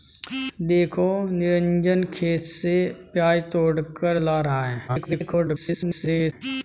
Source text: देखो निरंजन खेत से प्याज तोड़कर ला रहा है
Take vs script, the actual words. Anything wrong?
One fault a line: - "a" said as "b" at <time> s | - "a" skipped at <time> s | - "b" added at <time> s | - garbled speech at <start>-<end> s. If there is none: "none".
- garbled speech at 4.9-6.3 s